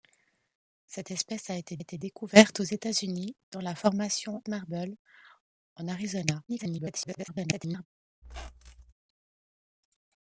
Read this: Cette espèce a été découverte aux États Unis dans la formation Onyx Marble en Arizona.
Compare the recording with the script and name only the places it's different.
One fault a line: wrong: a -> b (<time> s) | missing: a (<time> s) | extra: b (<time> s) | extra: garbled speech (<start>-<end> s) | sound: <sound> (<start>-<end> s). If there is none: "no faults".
extra: été (1.8 s)
missing: Onyx (4.4 s)
extra: garbled speech (6.5-7.9 s)
sound: squeak (8.2-8.9 s)